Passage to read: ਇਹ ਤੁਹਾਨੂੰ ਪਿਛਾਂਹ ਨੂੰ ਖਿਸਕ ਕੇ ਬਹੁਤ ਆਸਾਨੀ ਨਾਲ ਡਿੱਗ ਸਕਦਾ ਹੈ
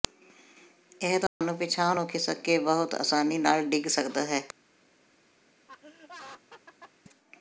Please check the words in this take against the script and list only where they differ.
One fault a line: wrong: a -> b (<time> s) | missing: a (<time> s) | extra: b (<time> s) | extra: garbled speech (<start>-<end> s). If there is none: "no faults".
no faults